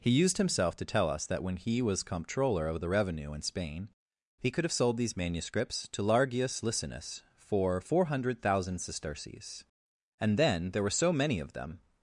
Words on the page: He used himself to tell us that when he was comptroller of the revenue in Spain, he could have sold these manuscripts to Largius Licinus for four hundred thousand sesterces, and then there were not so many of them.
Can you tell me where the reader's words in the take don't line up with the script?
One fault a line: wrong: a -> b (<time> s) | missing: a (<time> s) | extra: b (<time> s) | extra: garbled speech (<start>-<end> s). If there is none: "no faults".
missing: not (10.9 s)